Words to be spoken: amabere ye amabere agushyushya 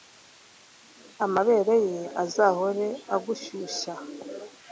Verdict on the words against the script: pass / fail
fail